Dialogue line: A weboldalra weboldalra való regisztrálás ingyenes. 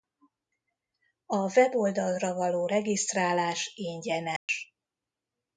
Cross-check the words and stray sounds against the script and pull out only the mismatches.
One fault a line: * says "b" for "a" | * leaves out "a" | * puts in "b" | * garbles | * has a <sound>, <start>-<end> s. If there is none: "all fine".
* leaves out "weboldalra"
* has a dropout, 4.4-4.5 s